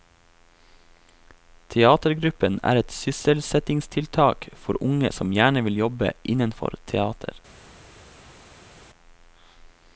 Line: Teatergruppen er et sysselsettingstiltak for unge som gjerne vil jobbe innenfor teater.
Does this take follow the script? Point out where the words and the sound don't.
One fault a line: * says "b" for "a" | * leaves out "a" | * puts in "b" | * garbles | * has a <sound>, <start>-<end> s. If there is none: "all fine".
all fine